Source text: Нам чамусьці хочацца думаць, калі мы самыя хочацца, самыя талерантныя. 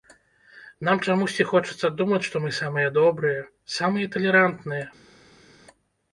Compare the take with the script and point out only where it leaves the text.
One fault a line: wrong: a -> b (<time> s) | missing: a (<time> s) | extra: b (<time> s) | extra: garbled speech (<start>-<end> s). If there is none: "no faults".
wrong: калі -> што (2.3 s)
wrong: хочацца -> добрыя (3.0 s)